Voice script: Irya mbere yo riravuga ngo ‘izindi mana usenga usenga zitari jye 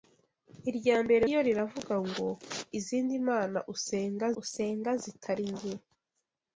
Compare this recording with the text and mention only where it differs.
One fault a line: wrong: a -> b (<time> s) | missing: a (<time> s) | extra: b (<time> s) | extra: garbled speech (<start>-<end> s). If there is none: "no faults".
no faults